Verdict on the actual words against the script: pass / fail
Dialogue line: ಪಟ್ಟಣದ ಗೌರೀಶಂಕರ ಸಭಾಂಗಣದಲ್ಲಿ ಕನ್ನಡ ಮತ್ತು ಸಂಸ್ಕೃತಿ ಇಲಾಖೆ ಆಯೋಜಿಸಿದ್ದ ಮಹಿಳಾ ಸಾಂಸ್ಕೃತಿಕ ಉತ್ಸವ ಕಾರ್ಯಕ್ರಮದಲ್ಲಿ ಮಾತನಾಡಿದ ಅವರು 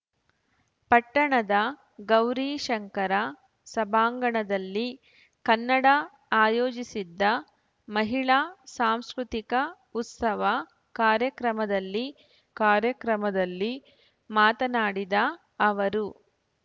fail